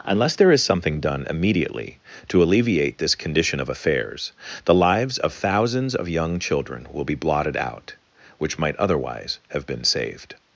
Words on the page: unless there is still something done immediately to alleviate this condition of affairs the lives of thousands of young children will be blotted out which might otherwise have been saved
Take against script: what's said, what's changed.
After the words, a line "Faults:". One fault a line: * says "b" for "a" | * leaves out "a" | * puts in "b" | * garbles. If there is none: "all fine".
unless there is something done immediately to alleviate this condition of affairs the lives of thousands of young children will be blotted out which might otherwise have been saved
Faults:
* leaves out "still"